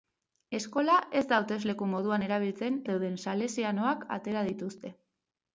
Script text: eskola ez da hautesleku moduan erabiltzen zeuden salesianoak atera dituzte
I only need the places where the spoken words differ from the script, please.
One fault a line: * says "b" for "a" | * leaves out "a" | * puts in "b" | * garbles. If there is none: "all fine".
all fine